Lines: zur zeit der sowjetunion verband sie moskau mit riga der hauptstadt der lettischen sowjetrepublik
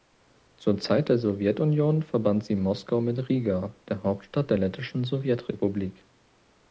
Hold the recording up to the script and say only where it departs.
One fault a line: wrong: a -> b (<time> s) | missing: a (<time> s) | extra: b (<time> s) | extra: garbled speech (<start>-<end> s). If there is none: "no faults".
no faults